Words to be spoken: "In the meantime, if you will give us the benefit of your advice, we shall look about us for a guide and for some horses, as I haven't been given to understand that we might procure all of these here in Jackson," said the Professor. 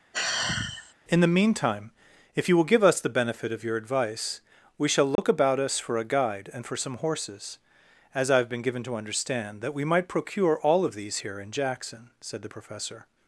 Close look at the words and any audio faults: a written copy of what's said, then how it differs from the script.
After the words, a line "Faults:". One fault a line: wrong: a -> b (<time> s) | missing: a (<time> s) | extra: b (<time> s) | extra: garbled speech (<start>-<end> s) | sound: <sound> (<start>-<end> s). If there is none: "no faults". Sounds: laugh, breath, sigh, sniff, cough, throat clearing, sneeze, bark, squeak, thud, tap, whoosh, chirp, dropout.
"In the meantime, if you will give us the benefit of your advice, we shall look about us for a guide and for some horses, as I have been given to understand that we might procure all of these here in Jackson," said the Professor.
Faults:
sound: sigh (0.1-0.9 s)
sound: dropout (5.2-5.2 s)
wrong: haven't -> have (8.4 s)